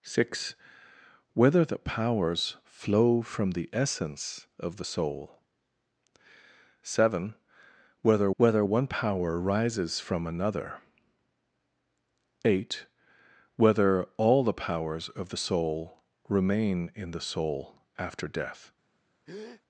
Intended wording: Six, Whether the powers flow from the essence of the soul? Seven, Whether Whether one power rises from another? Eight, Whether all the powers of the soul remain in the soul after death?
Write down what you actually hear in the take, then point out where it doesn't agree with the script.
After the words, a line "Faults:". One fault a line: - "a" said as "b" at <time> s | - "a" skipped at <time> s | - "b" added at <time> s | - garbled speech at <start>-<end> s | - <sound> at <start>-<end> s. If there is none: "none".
Six, Whether the powers flow from the essence of the soul? Seven, Whether Whether one power rises from another? Eight, Whether all the powers of the soul remain in the soul after death?
Faults:
- breath at 19.3-19.6 s